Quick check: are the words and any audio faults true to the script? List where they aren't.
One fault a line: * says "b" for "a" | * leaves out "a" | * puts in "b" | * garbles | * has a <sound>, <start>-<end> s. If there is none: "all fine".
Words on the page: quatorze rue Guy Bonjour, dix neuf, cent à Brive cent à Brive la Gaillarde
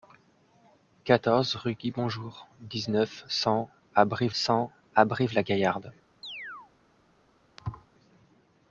* has a chirp, 6.2-6.7 s
* has a thud, 7.6-7.9 s